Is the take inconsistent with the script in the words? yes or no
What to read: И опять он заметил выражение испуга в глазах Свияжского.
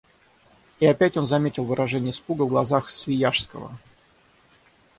no